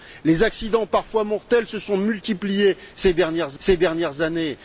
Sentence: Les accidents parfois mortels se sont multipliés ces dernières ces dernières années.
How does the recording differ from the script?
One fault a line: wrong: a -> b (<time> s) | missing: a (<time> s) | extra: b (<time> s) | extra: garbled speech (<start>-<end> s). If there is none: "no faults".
no faults